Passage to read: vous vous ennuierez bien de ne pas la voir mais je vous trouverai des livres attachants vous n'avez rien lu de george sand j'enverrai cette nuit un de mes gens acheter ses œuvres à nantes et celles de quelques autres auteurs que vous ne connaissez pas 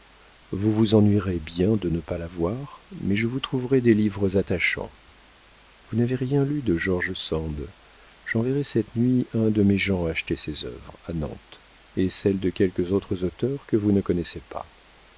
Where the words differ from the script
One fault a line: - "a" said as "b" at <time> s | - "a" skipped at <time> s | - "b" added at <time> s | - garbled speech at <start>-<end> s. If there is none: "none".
none